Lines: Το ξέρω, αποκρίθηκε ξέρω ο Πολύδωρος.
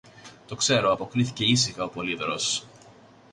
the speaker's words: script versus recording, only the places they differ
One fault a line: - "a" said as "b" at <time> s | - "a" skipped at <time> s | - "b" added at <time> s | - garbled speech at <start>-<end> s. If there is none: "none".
- "ξέρω" said as "ήσυχα" at 1.4 s